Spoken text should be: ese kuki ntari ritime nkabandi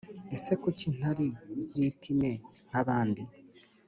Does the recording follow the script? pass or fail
pass